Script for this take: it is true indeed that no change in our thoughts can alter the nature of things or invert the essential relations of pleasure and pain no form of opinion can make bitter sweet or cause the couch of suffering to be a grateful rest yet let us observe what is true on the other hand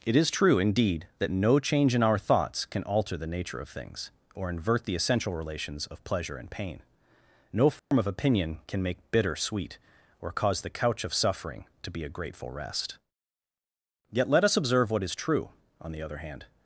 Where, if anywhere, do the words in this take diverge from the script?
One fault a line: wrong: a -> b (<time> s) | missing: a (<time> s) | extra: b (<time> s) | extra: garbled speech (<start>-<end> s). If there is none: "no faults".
no faults